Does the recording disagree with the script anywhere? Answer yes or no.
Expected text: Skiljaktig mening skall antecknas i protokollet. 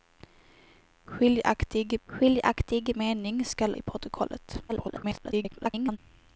yes